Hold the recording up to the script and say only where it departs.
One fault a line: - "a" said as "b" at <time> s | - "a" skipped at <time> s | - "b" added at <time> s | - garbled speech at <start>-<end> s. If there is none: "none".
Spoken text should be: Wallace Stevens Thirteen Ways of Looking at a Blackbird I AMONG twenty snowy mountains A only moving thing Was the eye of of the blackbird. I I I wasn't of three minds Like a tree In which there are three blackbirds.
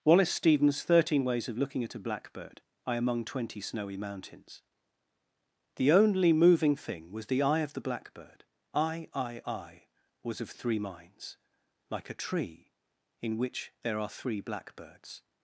- "A" said as "The" at 5.8 s
- "of" skipped at 7.7 s
- "wasn't" said as "was" at 10.2 s